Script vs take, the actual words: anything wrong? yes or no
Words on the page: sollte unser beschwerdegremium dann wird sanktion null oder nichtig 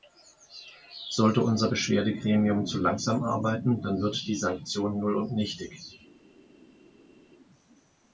yes